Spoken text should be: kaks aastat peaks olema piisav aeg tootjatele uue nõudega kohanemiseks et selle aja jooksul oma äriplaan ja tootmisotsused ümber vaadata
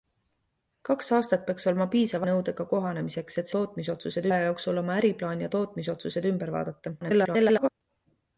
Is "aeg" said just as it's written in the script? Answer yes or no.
no